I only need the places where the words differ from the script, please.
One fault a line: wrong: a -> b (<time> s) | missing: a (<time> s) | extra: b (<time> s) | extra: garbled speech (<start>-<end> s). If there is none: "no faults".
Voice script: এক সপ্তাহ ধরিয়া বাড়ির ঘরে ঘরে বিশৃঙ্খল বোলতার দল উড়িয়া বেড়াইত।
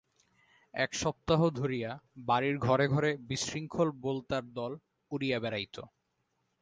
no faults